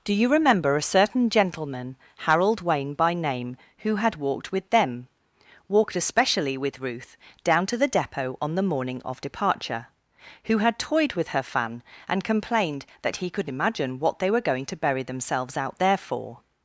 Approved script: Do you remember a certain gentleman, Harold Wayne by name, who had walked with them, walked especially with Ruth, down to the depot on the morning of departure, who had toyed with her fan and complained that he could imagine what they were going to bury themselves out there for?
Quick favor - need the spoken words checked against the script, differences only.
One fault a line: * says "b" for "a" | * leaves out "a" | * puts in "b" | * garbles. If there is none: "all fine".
all fine